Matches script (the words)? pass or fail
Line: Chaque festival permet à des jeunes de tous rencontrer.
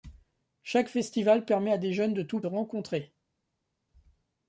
pass